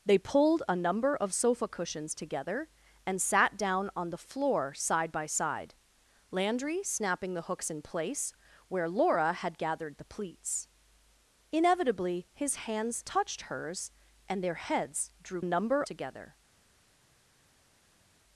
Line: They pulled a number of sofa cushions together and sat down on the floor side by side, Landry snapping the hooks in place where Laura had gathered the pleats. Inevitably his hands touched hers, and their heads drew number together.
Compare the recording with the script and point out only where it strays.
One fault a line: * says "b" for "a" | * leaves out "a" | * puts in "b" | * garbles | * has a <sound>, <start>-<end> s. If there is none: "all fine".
all fine